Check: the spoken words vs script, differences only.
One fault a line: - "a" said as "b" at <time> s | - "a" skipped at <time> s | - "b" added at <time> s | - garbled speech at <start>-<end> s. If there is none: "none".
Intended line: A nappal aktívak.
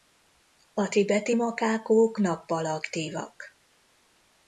- "tibeti makákók" added at 0.9 s